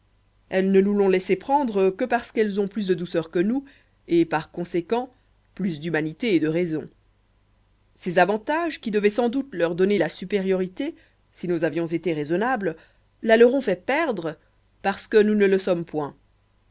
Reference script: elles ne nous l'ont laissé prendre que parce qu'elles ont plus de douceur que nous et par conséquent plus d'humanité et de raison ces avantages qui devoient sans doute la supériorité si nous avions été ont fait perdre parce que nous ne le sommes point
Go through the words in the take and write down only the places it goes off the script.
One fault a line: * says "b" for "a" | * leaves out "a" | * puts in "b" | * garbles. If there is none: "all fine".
* puts in "leur donner"
* puts in "raisonnables la leur"